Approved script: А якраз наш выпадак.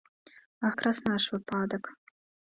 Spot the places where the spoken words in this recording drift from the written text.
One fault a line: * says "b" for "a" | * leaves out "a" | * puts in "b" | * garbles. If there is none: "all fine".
all fine